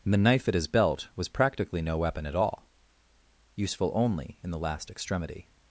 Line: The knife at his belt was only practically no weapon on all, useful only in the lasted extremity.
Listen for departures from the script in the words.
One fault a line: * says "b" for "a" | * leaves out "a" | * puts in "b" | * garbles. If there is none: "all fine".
* leaves out "only"
* says "at" for "on"
* says "last" for "lasted"